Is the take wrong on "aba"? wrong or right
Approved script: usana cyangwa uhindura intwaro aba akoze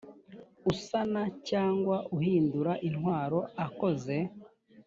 wrong